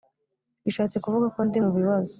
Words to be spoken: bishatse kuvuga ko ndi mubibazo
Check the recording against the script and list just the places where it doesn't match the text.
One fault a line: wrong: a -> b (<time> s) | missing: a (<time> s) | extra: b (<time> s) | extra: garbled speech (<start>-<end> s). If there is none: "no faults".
no faults